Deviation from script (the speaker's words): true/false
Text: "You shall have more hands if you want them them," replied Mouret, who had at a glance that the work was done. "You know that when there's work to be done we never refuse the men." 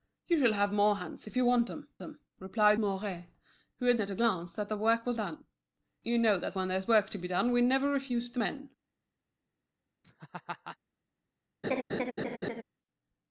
false